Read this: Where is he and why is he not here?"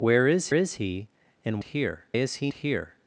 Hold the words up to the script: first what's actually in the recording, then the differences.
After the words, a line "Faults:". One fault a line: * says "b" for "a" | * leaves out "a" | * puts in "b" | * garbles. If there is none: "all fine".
Where is is he and here is he here?"
Faults:
* puts in "is"
* says "here" for "why"
* leaves out "not"